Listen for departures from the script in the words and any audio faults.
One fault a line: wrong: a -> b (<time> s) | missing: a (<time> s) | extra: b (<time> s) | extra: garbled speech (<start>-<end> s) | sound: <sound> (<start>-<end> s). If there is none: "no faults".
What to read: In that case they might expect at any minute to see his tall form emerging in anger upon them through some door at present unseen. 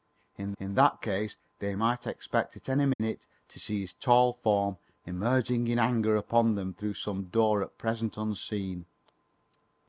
extra: in (0.6 s)
sound: dropout (2.9-3.0 s)